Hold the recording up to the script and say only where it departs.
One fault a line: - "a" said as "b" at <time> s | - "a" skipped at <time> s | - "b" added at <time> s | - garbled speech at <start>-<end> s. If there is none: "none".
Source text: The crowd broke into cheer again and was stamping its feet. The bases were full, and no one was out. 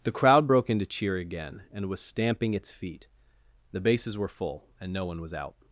none